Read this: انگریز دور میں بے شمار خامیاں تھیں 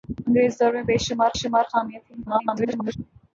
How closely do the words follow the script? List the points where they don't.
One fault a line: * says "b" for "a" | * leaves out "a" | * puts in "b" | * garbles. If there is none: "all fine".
* puts in "شمار"
* garbles